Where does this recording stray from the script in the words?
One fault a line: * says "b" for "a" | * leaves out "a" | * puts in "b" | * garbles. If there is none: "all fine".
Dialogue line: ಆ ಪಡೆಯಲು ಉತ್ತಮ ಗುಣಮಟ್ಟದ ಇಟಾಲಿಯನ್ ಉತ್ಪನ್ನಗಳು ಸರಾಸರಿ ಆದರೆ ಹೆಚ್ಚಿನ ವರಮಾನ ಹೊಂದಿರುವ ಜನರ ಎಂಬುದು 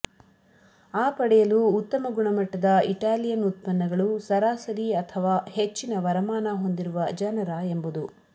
* says "ಅಥವಾ" for "ಆದರೆ"